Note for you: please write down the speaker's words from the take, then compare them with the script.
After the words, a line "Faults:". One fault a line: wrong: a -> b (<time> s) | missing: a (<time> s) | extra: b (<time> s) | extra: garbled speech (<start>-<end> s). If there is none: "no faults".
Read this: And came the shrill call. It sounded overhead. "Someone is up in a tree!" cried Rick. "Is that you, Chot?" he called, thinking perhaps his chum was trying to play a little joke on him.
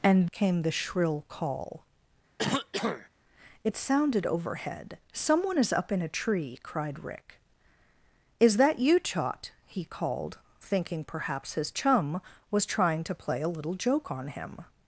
And came the shrill call. It sounded overhead. "Someone is up in a tree!" cried Rick. "Is that you, Chot?" he called, thinking perhaps his chum was trying to play a little joke on him.
Faults:
no faults